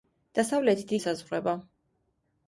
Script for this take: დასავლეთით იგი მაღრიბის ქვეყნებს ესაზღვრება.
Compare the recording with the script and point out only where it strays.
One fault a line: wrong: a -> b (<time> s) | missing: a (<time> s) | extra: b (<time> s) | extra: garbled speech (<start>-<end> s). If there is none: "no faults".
missing: იგი მაღრიბის ქვეყნებს (0.9 s)